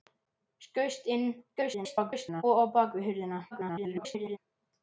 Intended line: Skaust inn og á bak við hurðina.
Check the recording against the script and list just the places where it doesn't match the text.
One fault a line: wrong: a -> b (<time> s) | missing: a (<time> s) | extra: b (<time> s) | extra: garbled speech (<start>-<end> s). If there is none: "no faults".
extra: garbled speech (1.6-2.4 s)
extra: garbled speech (3.5-4.4 s)